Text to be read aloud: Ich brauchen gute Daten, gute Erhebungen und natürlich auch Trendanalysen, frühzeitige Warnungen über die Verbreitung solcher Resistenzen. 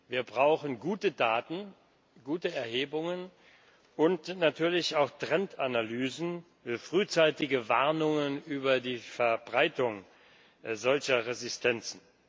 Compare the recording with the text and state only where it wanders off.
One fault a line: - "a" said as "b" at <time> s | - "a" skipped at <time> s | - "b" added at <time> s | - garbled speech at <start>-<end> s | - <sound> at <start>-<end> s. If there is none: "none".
- "Ich" said as "Wir" at 0.1 s